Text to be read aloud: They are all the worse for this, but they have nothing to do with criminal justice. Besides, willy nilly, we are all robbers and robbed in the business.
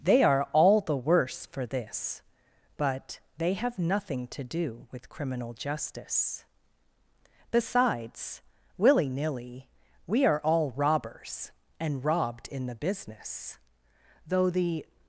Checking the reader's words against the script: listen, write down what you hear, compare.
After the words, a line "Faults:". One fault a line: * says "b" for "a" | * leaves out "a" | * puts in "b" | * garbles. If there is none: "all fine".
They are all the worse for this, but they have nothing to do with criminal justice. Besides, willy nilly, we are all robbers and robbed in the business. Though the
Faults:
* puts in "Though the"